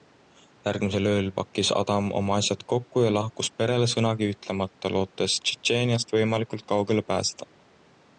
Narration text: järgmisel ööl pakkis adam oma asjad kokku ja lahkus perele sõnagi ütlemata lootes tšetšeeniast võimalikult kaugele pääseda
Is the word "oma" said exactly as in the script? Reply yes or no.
yes